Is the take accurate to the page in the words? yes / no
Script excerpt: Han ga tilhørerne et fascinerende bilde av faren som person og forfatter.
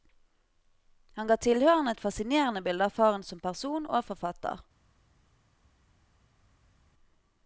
yes